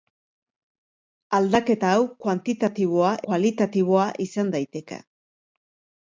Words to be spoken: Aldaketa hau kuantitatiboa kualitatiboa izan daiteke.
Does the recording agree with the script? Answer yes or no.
yes